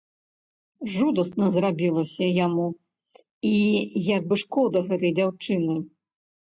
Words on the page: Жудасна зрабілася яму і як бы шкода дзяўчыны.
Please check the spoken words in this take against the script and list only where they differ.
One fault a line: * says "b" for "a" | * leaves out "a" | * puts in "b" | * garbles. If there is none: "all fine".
* puts in "гэтай"